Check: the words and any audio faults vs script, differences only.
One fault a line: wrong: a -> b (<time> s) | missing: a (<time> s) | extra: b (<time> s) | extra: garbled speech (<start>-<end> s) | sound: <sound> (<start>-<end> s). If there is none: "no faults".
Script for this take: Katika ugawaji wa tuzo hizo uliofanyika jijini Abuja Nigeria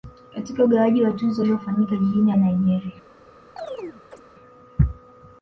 missing: hizo (1.4 s)
missing: Abuja (2.3 s)
sound: chirp (3.6-4.2 s)